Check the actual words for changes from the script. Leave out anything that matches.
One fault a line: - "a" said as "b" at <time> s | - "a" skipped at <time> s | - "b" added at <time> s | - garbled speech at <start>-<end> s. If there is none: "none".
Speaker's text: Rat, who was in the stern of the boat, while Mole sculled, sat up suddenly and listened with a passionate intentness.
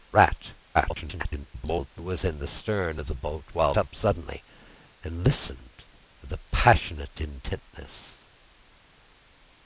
- garbled speech at 0.7-1.9 s
- "Mole sculled sat" skipped at 3.7 s